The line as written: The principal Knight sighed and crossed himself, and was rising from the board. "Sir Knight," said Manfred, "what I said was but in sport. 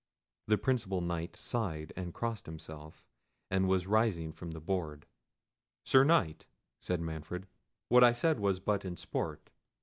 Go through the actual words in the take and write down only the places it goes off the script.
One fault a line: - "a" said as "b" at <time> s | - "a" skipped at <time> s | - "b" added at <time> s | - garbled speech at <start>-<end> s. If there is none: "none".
none